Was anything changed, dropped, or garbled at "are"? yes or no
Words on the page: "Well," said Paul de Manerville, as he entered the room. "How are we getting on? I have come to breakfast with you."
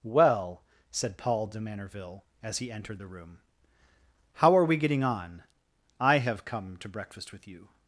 no